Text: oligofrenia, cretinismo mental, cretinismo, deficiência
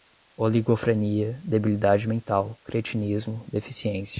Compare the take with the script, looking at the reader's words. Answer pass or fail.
fail